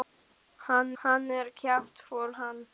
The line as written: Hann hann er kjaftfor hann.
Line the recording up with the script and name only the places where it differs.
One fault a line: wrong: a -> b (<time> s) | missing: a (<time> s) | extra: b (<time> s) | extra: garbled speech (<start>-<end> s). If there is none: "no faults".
no faults